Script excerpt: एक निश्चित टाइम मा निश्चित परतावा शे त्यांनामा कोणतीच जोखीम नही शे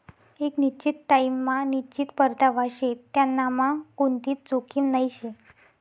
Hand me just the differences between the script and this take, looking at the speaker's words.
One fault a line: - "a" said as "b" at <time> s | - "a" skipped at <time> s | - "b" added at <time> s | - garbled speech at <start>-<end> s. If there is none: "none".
none